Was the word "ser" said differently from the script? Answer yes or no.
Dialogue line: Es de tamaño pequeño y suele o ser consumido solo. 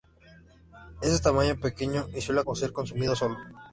no